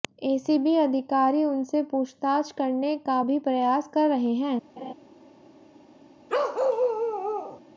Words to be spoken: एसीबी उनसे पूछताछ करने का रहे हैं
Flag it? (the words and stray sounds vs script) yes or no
yes